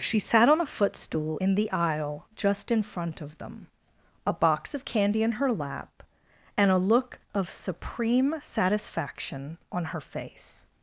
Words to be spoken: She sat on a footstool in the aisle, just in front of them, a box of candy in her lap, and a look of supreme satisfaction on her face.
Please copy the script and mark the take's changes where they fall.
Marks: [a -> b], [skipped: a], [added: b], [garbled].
She sat on a footstool in the aisle, just in front of them, a box of candy in her lap, and a look of supreme satisfaction on her face.